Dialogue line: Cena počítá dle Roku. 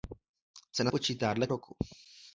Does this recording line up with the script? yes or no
yes